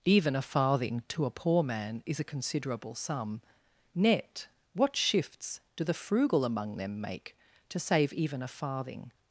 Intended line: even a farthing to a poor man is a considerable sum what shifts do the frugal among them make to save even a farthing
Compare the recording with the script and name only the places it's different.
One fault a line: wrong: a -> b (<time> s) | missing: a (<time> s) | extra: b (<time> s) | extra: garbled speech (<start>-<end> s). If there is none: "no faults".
extra: net (3.9 s)